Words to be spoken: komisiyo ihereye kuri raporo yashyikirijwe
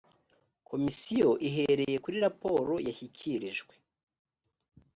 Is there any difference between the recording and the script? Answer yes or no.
no